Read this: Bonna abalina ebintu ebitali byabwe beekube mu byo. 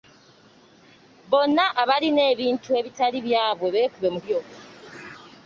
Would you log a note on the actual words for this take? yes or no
no